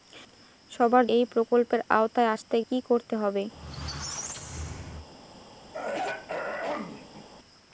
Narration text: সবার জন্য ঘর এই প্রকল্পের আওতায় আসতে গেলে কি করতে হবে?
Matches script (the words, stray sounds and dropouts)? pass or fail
fail